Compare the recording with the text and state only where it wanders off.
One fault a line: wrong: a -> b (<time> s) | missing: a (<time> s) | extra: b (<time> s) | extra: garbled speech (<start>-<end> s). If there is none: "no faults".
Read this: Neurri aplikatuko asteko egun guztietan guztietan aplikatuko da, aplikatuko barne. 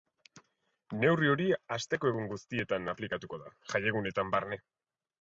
wrong: aplikatuko -> hori (1.3 s)
missing: guztietan (3.0 s)
wrong: aplikatuko -> jaiegunetan (3.8 s)